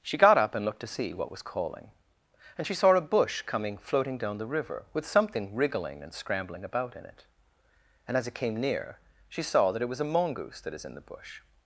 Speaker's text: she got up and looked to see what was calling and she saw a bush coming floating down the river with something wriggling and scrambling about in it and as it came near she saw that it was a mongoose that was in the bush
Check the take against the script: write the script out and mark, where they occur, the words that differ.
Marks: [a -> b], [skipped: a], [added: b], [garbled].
she got up and looked to see what was calling and she saw a bush coming floating down the river with something wriggling and scrambling about in it and as it came near she saw that it was a mongoose that [was -> is] in the bush